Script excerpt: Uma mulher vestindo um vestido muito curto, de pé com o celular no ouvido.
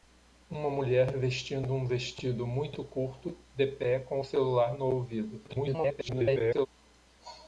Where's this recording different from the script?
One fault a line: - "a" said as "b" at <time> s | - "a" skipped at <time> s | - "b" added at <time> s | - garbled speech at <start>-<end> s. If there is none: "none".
- garbled speech at 5.5-6.7 s